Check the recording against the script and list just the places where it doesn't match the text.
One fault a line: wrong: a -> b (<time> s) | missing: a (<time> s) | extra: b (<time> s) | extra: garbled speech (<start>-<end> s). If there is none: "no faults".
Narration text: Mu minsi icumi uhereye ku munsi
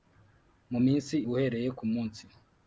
missing: icumi (1.1 s)